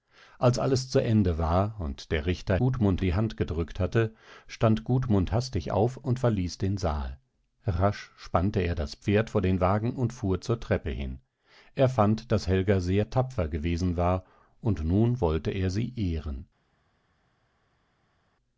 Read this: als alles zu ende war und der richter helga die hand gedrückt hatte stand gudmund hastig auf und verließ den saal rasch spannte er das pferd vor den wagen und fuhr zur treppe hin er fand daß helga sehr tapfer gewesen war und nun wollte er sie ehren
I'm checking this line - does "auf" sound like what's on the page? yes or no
yes